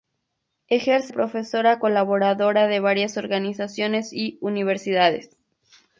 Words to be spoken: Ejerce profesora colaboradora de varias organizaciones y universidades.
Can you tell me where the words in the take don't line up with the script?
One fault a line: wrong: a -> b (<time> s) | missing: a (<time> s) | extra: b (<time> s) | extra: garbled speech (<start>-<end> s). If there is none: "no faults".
no faults